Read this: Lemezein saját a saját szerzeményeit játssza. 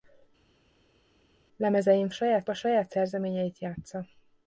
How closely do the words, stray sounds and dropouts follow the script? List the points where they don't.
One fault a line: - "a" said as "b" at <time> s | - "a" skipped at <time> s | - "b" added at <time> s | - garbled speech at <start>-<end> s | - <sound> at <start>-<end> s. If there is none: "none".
none